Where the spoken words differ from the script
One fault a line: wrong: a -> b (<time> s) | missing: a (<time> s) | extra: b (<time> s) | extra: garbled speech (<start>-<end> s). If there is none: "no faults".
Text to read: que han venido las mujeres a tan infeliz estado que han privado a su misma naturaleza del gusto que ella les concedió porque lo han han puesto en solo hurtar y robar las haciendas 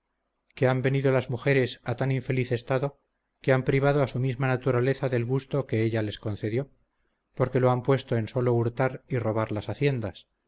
missing: han (7.8 s)